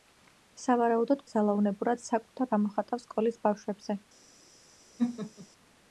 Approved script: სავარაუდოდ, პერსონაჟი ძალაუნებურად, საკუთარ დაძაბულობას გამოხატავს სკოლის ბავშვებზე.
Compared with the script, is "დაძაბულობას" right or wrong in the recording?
wrong